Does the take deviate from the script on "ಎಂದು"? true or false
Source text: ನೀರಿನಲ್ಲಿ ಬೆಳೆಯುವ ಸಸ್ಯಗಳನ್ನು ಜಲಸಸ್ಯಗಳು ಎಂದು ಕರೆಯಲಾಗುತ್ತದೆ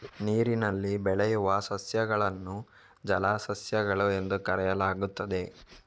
false